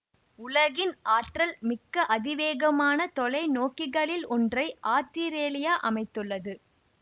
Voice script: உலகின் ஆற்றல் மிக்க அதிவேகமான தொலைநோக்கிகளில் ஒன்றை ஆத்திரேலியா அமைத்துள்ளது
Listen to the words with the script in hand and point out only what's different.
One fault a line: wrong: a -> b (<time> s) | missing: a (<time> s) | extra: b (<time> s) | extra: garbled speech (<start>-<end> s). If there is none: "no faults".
no faults